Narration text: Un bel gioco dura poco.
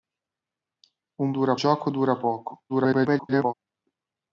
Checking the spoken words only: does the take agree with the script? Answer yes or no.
no